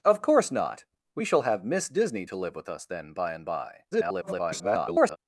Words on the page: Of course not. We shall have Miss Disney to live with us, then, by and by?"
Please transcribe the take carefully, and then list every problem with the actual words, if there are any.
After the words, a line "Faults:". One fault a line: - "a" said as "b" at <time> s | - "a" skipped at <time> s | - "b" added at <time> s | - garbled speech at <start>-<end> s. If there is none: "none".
Of course not. We shall have Miss Disney to live with us, then, by and by?" [garbled]
Faults:
- garbled speech at 3.9-5.2 s